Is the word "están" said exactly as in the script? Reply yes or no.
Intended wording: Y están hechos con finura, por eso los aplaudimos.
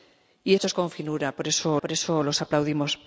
no